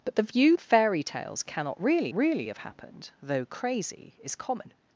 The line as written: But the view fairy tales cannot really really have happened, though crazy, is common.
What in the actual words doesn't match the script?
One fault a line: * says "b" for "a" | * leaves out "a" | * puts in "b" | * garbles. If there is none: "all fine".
all fine